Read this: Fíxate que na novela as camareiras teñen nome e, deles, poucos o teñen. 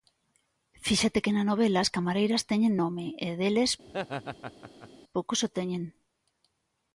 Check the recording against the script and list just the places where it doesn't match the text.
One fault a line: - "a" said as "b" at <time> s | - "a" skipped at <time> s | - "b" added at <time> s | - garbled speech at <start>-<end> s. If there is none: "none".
none